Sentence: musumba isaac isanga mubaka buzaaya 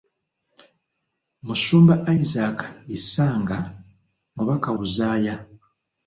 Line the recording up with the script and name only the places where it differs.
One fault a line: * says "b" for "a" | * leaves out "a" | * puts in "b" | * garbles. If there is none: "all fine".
all fine